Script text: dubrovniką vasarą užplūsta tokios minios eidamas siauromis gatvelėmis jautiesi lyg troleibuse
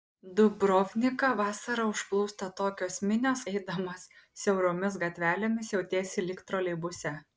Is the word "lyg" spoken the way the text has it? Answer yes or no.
yes